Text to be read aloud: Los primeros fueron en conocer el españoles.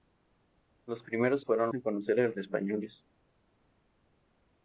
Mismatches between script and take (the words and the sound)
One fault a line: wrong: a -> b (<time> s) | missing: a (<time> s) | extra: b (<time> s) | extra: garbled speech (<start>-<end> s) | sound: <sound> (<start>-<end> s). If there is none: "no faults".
no faults